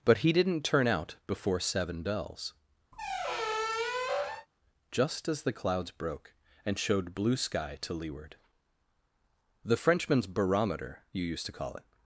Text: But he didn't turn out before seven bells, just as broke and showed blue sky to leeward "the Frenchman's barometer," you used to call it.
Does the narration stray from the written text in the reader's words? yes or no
yes